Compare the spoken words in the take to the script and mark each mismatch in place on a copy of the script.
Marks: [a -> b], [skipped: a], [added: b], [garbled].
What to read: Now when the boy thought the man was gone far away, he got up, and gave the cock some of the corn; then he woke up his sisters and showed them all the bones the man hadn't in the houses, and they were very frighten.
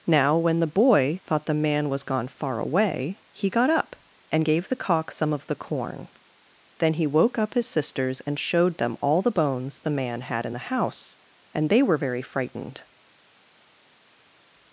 Now when the boy thought the man was gone far away, he got up, and gave the cock some of the corn; then he woke up his sisters and showed them all the bones the man [hadn't -> had] in the [houses, -> house] and they were very [frighten. -> frightened]